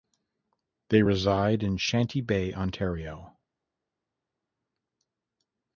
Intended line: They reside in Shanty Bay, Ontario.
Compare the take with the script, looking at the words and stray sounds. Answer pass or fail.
pass